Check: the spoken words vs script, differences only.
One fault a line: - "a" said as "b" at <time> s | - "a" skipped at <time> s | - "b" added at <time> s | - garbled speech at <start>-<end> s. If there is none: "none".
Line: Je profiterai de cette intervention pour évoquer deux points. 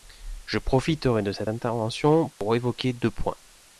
none